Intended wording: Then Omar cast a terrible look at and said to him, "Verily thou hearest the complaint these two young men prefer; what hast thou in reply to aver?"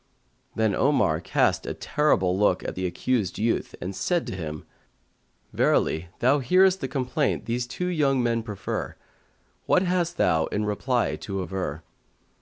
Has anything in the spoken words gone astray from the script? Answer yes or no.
yes